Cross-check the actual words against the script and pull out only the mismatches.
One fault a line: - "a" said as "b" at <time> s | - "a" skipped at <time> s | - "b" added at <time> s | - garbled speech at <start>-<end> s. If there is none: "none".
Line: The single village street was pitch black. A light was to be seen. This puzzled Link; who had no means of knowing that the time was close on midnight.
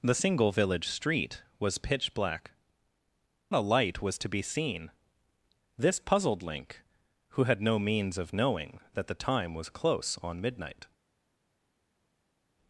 none